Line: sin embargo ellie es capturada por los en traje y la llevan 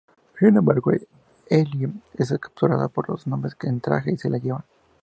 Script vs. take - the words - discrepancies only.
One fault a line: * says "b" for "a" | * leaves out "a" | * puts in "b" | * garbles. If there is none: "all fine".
* puts in "hombres"
* puts in "se"